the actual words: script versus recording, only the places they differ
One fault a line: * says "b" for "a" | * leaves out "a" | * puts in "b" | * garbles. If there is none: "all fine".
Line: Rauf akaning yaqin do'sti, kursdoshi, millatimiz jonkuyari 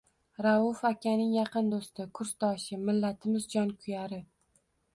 all fine